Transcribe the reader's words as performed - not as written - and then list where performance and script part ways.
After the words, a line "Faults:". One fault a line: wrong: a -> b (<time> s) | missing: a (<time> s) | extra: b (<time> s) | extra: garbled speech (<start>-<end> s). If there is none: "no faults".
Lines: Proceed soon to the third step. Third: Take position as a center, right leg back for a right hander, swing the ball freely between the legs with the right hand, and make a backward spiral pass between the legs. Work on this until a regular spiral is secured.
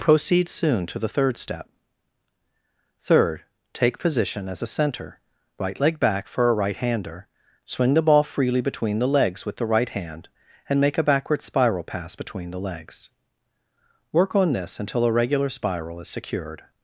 Proceed soon to the third step. Third: Take position as a center, right leg back for a right hander, swing the ball freely between the legs with the right hand, and make a backward spiral pass between the legs. Work on this until a regular spiral is secured.
Faults:
no faults